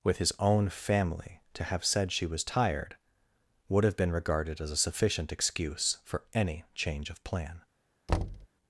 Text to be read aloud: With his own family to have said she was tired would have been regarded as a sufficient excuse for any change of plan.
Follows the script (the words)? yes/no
yes